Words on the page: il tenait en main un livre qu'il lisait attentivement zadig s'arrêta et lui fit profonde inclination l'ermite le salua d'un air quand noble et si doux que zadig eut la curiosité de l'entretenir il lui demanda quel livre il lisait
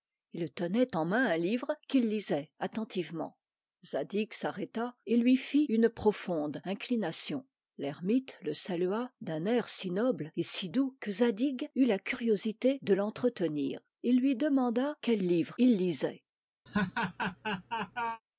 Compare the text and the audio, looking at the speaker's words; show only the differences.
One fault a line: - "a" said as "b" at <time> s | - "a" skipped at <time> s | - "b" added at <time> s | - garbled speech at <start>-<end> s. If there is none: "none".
- "une" added at 5.7 s
- "quand" said as "si" at 9.7 s